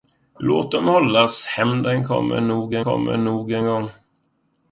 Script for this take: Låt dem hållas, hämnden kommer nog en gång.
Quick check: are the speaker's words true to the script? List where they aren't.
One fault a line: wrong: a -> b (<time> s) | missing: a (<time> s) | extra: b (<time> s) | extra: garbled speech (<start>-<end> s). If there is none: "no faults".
extra: kommer nog en (2.8 s)